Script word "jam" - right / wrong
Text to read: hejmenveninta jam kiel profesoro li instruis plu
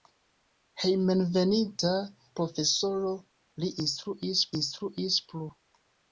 wrong